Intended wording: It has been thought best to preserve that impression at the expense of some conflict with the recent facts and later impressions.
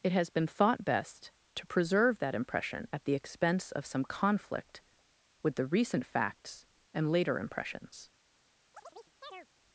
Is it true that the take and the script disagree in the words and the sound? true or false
true